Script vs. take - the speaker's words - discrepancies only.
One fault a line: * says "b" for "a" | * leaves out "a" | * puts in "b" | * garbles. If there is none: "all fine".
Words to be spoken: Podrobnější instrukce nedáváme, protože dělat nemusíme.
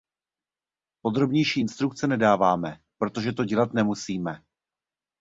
* puts in "to"